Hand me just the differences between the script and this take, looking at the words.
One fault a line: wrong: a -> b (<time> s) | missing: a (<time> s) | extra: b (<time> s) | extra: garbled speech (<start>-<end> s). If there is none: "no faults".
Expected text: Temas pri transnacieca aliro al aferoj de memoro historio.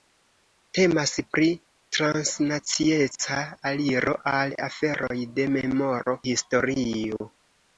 no faults